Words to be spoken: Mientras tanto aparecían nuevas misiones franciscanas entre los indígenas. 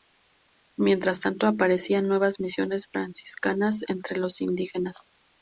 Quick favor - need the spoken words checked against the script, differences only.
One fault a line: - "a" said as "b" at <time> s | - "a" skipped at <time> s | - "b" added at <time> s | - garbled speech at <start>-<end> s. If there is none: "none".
none